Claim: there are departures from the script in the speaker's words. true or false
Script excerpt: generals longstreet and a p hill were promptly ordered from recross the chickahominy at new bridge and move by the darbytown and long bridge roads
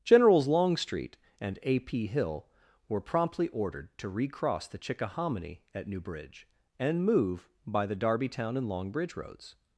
true